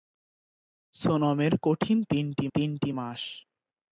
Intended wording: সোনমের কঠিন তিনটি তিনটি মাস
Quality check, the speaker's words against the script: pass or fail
pass